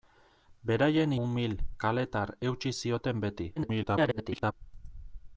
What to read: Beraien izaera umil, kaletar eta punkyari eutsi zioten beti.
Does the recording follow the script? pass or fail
fail